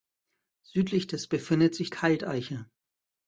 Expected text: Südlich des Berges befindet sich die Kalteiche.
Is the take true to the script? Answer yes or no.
no